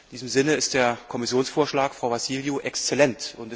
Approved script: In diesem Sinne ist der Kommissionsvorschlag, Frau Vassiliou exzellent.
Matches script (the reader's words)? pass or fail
pass